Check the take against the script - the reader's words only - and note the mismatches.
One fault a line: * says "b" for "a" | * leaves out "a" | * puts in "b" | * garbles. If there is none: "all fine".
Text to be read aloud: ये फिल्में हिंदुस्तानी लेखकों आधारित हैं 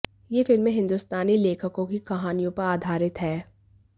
* puts in "की कहानियों पर"